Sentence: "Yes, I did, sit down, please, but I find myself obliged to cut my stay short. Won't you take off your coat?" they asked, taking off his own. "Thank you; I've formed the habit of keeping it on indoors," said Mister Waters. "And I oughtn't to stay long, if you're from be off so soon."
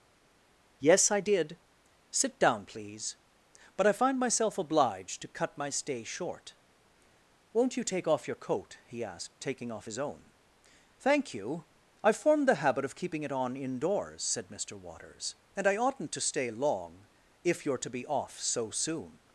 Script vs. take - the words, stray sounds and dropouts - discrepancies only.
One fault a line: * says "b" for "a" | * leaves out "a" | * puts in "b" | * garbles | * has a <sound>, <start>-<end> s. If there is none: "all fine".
* says "he" for "they"
* says "to" for "from"